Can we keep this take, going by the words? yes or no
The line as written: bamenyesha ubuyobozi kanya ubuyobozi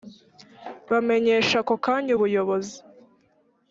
no